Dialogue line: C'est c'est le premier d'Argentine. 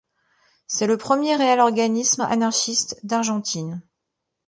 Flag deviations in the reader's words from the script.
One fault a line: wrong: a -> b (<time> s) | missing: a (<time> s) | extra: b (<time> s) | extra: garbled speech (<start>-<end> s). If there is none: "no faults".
missing: c'est (0.9 s)
extra: réel organisme anarchiste (1.3 s)